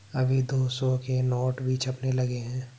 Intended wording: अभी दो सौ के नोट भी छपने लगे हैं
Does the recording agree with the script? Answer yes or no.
yes